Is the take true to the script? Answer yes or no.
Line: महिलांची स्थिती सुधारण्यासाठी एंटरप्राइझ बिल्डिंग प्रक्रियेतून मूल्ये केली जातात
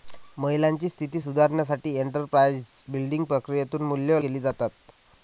yes